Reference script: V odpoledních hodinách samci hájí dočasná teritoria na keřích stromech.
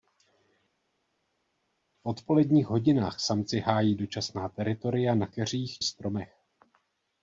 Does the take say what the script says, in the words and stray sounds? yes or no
yes